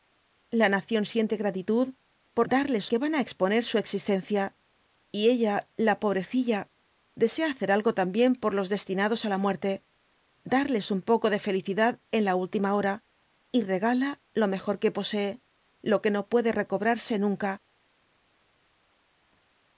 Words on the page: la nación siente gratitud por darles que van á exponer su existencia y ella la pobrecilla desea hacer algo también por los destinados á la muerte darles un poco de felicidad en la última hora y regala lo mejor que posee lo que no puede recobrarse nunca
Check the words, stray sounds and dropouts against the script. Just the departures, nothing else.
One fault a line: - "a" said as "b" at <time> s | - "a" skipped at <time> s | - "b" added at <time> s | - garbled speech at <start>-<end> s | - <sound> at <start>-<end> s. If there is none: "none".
none